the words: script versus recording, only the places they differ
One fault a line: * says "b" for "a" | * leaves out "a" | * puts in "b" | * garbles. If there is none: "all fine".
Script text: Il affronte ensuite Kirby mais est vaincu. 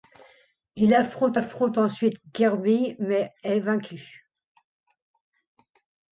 * puts in "affronte"